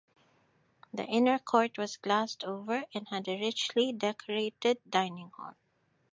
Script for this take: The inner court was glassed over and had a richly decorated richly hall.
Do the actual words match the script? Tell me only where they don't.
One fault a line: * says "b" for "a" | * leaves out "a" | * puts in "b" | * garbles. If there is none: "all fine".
* says "dining" for "richly"